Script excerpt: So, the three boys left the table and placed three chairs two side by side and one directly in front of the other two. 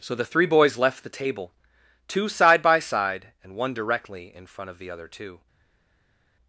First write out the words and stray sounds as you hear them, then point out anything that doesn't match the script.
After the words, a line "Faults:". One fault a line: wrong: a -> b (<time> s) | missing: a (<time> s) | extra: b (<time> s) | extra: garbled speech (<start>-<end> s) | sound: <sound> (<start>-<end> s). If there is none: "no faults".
So, the three boys left the table two side by side and one directly in front of the other two.
Faults:
missing: and placed three chairs (1.5 s)